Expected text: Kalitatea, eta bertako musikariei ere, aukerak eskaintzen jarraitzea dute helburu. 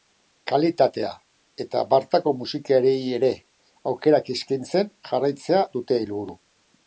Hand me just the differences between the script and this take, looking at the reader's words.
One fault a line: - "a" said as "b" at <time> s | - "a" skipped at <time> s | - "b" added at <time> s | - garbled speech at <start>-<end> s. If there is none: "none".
none